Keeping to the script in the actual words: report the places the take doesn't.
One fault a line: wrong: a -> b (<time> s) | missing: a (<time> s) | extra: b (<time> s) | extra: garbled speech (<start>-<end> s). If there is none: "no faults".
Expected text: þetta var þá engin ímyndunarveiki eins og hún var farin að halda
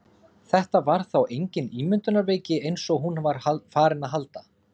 no faults